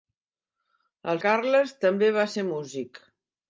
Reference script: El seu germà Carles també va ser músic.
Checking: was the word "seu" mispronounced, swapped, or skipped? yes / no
yes